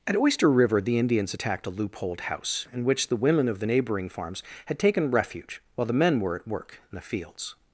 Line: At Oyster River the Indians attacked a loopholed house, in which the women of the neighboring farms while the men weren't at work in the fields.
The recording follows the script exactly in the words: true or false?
false